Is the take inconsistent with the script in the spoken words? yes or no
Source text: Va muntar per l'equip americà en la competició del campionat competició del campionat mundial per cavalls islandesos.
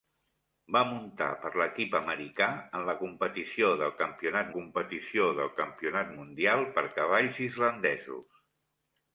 no